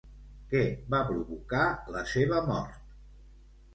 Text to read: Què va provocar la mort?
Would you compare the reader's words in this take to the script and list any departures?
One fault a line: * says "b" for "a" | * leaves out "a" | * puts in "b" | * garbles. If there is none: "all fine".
* puts in "seva"